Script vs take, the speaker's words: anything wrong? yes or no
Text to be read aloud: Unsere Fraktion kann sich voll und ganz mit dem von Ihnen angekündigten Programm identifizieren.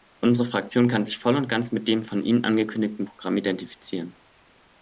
no